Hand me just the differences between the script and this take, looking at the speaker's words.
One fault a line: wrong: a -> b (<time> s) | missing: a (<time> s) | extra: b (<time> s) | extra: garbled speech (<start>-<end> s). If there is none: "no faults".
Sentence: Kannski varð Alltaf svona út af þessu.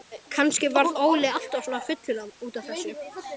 extra: Óli (1.1 s)
extra: fullur (1.9 s)